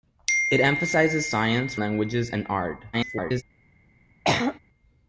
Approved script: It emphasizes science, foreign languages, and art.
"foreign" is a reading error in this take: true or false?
true